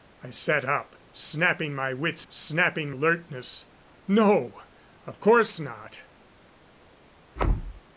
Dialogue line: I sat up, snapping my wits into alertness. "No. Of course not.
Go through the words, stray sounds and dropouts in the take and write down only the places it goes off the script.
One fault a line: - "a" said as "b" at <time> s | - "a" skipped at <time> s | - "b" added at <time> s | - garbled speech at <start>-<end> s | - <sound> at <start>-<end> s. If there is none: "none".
- "into" said as "snapping" at 2.3 s
- thud at 7.4-7.8 s